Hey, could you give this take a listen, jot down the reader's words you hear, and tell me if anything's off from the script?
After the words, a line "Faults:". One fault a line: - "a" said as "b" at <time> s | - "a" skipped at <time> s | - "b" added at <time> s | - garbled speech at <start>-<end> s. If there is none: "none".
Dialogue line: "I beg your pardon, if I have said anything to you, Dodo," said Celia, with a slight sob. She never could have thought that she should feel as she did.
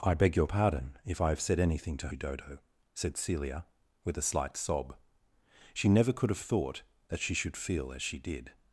"I beg your pardon, if I have said anything to you, Dodo," said Celia, with a slight sob. She never could have thought that she should feel as she did.
Faults:
none